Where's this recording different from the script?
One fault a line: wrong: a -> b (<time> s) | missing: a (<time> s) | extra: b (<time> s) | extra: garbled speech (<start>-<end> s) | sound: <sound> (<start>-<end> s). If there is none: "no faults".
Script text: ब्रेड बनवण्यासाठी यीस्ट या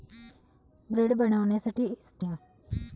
no faults